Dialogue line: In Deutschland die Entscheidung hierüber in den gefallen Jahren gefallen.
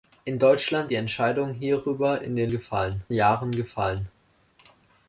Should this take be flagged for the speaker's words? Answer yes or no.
no